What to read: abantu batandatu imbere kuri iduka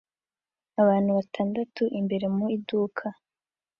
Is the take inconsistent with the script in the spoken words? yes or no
yes